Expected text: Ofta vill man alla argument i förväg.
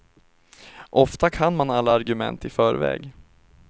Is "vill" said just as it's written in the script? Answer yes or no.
no